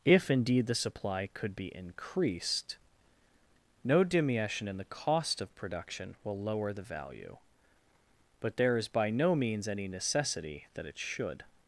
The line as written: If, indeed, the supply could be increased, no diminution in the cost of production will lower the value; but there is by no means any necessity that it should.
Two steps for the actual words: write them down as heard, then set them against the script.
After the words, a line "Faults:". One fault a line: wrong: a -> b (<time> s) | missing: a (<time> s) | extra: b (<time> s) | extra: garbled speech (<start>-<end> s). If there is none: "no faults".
If, indeed, the supply could be increased, no diminution in the cost of production will lower the value; but there is by no means any necessity that it should.
Faults:
no faults